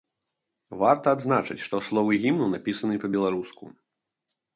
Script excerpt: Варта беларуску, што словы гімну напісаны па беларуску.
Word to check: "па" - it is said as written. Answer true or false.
true